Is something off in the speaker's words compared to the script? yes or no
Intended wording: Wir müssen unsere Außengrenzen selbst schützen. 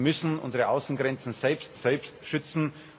yes